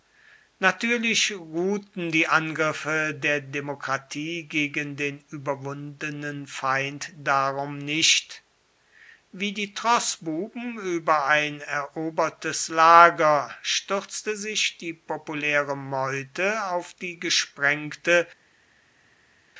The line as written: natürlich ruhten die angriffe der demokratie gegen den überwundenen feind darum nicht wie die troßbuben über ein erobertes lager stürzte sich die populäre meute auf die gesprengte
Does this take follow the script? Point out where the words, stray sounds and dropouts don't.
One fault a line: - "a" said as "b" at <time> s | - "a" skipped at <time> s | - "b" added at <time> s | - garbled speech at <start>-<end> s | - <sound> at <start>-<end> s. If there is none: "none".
none